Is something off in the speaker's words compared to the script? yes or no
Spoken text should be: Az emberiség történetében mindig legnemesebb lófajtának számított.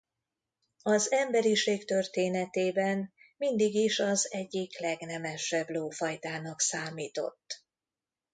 yes